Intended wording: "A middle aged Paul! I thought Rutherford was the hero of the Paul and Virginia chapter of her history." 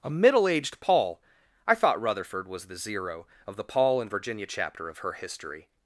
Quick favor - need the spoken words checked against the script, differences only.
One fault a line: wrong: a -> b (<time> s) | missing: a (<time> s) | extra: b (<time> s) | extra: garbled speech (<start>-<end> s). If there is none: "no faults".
wrong: hero -> zero (2.8 s)